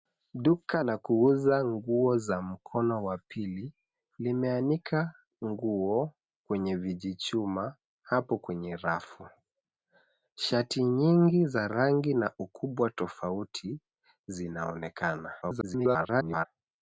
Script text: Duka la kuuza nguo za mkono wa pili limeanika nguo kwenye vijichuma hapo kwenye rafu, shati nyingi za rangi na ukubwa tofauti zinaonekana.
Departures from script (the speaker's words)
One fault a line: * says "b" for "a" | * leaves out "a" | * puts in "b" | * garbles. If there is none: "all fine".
* garbles